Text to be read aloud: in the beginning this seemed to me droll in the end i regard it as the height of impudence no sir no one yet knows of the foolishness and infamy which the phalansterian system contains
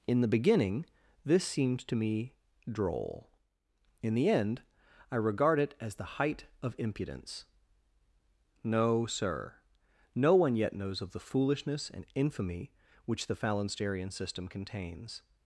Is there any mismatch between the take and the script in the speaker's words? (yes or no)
no